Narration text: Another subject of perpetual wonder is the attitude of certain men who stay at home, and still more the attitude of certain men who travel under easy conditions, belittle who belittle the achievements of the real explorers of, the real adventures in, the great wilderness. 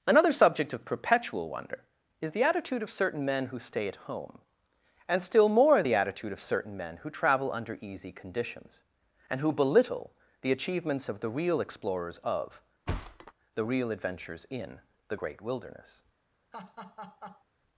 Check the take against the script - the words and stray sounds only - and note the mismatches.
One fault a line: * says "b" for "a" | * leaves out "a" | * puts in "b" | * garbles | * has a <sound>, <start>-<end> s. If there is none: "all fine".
* says "and" for "belittle"
* has a thud, 12.9-13.3 s
* has a laugh, 16.5-17.4 s